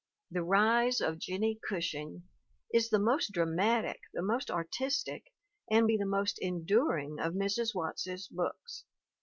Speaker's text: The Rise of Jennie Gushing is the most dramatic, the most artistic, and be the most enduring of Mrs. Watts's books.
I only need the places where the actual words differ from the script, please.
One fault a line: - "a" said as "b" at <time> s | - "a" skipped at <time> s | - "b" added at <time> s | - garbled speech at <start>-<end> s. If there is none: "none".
none